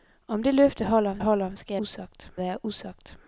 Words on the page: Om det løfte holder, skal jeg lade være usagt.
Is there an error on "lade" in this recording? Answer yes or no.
yes